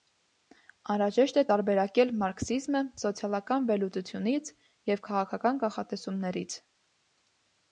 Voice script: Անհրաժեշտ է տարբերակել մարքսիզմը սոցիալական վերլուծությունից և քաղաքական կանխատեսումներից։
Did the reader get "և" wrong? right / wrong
right